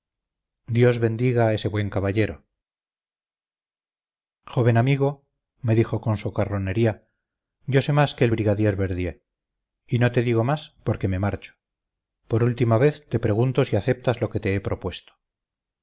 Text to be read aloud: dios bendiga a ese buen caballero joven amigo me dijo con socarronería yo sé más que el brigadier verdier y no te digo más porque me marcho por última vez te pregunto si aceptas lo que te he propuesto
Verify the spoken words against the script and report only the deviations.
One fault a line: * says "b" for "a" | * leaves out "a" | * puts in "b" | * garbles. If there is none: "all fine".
all fine